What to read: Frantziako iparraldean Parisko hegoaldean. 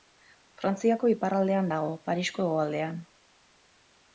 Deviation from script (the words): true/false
true